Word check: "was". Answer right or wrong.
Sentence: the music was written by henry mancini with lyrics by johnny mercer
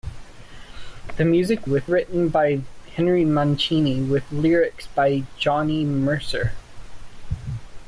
wrong